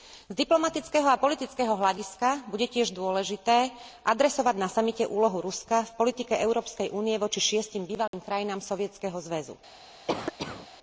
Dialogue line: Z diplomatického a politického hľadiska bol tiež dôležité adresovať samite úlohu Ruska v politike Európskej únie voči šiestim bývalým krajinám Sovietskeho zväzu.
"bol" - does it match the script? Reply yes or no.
no